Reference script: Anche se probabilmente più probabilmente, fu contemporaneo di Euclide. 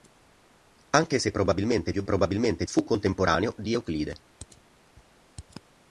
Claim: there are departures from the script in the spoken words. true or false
false